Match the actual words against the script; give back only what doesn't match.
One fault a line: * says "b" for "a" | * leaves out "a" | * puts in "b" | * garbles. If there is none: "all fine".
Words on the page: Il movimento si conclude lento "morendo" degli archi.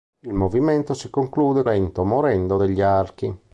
all fine